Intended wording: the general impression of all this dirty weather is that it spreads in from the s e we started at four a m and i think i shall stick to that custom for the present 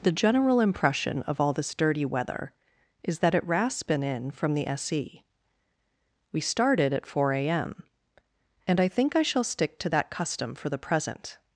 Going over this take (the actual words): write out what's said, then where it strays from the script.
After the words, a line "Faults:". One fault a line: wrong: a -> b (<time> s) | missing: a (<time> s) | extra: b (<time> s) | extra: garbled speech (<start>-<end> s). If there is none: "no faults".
the general impression of all this dirty weather is that it raspin in from the s e we started at four a m and i think i shall stick to that custom for the present
Faults:
wrong: spreads -> raspin (3.5 s)